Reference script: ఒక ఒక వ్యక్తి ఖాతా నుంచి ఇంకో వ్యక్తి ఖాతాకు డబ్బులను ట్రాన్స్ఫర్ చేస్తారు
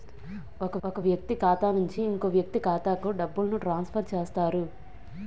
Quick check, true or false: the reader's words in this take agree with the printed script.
true